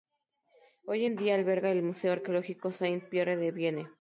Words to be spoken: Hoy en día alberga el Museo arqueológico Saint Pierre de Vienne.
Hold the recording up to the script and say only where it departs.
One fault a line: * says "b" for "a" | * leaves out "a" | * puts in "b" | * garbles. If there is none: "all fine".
all fine